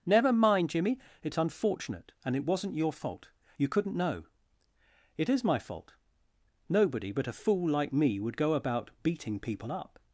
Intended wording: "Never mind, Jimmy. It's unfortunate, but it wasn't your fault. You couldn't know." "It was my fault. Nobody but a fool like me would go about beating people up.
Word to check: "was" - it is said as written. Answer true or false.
false